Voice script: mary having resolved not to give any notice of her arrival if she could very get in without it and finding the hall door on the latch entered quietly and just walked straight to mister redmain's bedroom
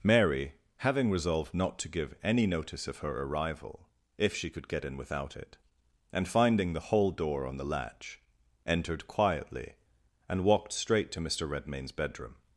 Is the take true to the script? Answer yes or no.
no